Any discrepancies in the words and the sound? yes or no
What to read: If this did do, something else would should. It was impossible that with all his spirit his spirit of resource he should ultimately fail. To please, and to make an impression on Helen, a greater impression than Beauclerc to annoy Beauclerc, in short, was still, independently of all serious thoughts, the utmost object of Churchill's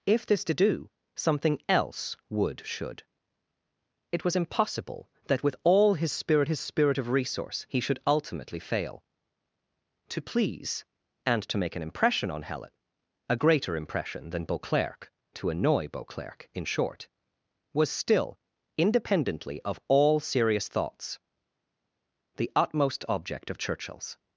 no